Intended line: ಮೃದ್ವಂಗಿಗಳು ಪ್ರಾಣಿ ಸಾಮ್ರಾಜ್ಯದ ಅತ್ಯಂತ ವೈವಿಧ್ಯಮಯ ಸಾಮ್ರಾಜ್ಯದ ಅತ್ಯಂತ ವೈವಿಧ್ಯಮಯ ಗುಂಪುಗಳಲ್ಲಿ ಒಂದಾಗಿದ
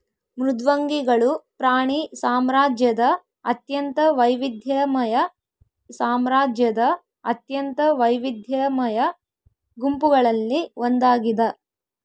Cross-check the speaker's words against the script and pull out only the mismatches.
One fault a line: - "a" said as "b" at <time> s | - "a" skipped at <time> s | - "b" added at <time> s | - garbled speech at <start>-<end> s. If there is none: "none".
none